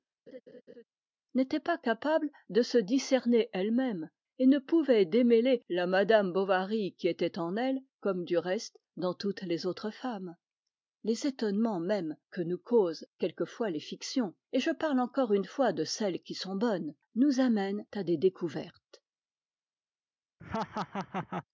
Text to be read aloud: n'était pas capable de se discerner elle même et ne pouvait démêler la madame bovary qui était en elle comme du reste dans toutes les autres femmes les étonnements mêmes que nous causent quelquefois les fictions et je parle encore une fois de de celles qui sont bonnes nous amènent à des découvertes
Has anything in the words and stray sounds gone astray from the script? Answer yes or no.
yes